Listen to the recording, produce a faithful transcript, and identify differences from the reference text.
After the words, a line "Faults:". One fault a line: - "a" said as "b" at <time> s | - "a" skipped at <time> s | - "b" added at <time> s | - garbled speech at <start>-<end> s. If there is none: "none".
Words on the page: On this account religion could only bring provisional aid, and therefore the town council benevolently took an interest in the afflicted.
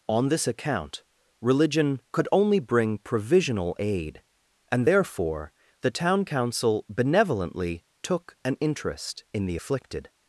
On this account religion could only bring provisional aid, and therefore the town council benevolently took an interest in the afflicted.
Faults:
none